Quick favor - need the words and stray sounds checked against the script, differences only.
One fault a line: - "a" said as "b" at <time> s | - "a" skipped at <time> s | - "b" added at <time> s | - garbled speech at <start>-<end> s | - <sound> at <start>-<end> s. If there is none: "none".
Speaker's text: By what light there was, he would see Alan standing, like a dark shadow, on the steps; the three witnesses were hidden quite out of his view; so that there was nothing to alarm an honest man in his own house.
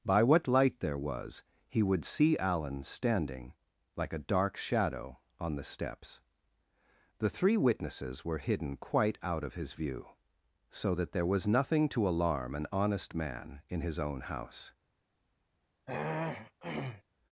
- throat clearing at 15.9-17.0 s